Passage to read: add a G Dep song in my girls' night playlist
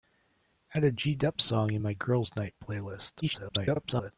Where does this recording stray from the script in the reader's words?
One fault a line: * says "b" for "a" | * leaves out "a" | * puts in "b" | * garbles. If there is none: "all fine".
* garbles